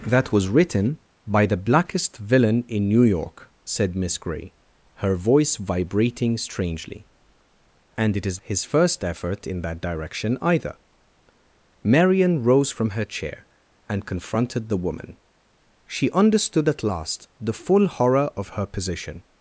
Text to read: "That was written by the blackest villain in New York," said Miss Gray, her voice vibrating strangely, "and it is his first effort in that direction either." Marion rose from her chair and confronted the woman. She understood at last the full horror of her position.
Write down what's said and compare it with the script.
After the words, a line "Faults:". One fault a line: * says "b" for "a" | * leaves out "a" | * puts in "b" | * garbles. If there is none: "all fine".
"That was written by the blackest villain in New York," said Miss Gray, her voice vibrating strangely, "and it is his first effort in that direction either." Marion rose from her chair and confronted the woman. She understood at last the full horror of her position.
Faults:
all fine